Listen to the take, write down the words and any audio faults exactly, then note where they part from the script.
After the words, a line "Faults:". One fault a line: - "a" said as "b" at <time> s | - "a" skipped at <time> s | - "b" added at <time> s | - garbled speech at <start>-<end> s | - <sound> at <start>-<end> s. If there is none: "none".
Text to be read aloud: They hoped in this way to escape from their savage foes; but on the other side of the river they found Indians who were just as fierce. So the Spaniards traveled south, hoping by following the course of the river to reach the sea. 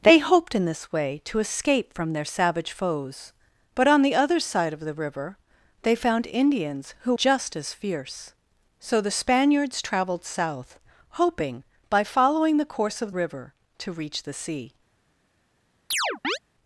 They hoped in this way to escape from their savage foes; but on the other side of the river they found Indians who just as fierce. So the Spaniards traveled south, hoping by following the course of river to reach the sea.
Faults:
- "were" skipped at 7.1 s
- "the" skipped at 13.1 s
- chirp at 15.9-16.4 s